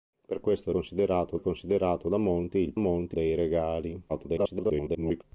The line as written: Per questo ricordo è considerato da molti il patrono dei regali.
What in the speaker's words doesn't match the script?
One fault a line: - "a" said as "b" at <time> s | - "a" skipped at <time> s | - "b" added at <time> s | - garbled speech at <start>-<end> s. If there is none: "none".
- "ricordo" said as "considerato" at 0.7 s
- "patrono" said as "molti" at 2.8 s
- garbled speech at 4.1-5.2 s